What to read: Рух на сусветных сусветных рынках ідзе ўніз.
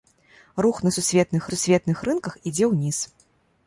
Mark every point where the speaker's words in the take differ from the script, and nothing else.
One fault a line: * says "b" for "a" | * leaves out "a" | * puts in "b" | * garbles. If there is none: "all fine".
all fine